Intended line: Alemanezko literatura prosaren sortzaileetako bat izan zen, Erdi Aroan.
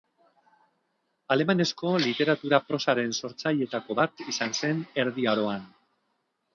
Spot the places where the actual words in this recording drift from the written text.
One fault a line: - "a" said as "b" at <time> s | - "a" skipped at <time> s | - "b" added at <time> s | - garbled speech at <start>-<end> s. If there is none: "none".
none